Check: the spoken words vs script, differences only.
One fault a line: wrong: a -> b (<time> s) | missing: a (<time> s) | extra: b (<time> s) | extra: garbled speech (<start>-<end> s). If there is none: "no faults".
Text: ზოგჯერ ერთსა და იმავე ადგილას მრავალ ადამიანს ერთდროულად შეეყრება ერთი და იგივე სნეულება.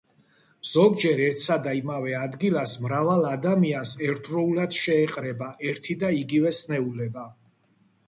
no faults